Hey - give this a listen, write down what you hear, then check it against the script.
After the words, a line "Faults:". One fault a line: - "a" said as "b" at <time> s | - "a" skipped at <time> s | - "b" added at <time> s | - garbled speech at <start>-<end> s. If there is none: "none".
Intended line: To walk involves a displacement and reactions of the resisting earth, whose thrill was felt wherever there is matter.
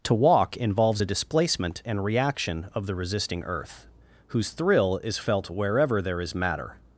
To walk involves a displacement and reaction of the resisting earth, whose thrill is felt wherever there is matter.
Faults:
- "reactions" said as "reaction" at 2.0 s
- "was" said as "is" at 5.0 s